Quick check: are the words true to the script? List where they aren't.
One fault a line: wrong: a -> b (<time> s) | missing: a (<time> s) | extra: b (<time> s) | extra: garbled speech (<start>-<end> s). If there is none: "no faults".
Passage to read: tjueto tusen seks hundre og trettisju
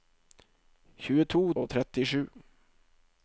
missing: tusen seks hundre (1.4 s)